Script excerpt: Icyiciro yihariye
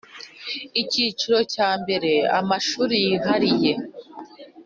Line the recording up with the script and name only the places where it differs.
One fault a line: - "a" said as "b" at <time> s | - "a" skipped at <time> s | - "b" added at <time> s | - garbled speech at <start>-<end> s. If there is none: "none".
- "cya mbere Amashuri" added at 1.5 s